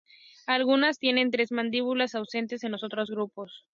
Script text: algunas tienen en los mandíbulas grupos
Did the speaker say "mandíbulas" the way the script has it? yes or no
no